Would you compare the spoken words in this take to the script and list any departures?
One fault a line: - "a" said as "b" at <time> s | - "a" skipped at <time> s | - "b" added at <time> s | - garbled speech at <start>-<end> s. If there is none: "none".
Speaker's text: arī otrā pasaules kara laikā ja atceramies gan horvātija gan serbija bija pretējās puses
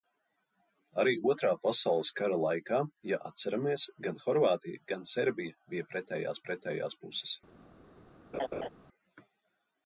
- "pretējās" added at 6.5 s